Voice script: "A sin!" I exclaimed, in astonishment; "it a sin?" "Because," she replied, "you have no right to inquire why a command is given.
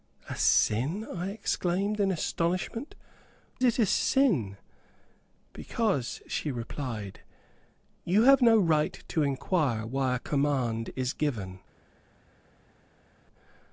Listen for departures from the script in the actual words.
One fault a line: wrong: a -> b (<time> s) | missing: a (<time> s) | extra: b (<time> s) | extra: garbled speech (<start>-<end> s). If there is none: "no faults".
no faults